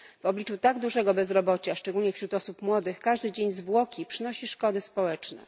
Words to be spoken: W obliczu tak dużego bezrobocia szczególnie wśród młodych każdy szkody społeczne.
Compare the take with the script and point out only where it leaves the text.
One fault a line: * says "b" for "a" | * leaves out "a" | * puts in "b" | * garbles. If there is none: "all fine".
* puts in "osób"
* puts in "dzień zwłoki przynosi"